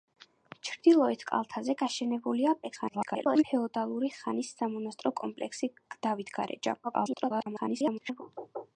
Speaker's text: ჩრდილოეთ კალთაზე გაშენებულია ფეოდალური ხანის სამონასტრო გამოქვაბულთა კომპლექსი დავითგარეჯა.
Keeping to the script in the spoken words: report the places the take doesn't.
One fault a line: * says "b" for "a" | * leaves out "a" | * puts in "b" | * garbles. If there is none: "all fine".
* garbles
* leaves out "გამოქვაბულთა"
* garbles